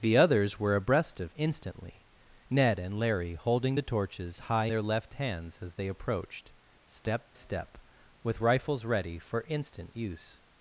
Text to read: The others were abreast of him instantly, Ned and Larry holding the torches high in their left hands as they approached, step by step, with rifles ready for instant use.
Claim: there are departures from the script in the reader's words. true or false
true